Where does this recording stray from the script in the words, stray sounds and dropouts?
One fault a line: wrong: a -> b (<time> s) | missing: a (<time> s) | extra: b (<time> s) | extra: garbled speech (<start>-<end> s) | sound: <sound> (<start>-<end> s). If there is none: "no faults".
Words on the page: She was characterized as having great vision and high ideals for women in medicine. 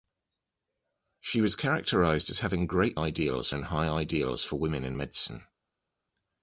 wrong: vision -> ideals (2.9 s)